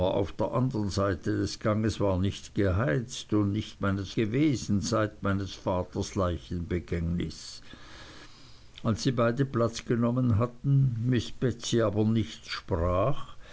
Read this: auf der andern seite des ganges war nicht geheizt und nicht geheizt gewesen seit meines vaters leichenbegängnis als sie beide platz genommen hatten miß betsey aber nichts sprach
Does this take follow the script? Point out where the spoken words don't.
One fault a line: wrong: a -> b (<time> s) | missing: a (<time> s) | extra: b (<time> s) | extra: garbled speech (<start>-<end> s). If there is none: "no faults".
wrong: geheizt -> meines (3.8 s)